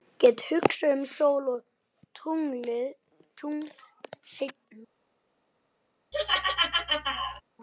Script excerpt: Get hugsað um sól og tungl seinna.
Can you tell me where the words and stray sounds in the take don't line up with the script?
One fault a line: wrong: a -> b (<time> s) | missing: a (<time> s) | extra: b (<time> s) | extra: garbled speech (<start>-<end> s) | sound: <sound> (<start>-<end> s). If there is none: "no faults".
sound: laugh (6.1-7.4 s)